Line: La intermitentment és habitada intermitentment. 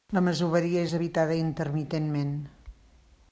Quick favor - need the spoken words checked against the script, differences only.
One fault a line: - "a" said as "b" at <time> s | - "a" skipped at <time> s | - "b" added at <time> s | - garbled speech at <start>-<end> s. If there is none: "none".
- "intermitentment" said as "masoveria" at 0.3 s